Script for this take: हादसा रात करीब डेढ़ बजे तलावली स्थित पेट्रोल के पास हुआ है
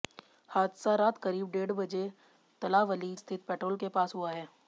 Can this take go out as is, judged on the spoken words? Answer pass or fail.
pass